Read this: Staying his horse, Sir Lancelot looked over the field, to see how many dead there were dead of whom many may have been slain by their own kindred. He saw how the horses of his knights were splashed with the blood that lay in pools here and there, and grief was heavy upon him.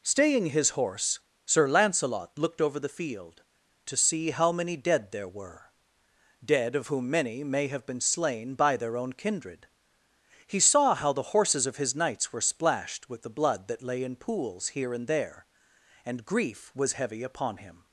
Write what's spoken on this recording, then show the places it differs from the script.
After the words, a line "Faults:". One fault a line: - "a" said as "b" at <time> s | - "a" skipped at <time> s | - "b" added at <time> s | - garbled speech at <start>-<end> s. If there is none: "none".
Staying his horse, Sir Lancelot looked over the field, to see how many dead there were dead of whom many may have been slain by their own kindred. He saw how the horses of his knights were splashed with the blood that lay in pools here and there, and grief was heavy upon him.
Faults:
none